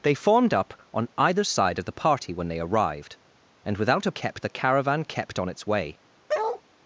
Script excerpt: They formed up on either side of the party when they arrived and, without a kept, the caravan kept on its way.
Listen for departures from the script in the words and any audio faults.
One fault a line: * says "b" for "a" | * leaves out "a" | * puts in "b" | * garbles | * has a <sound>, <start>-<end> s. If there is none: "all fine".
* has a bark, 6.3-6.6 s